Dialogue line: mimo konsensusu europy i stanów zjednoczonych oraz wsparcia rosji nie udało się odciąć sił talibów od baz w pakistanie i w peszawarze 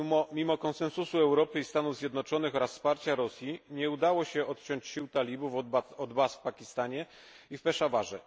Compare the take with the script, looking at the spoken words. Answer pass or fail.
pass